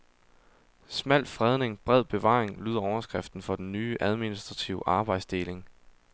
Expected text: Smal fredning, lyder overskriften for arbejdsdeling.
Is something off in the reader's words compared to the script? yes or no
yes